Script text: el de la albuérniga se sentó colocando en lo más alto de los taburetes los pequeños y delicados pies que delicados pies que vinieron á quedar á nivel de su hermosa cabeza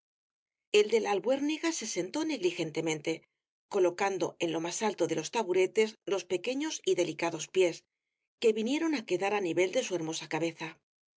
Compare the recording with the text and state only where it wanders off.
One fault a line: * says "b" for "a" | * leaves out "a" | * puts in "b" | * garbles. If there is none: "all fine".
* puts in "negligentemente"
* leaves out "delicados pies que"